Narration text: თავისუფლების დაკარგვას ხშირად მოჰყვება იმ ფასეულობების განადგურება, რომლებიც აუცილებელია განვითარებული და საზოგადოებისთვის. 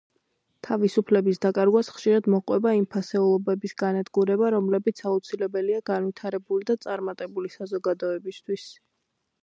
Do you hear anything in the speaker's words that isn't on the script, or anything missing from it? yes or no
yes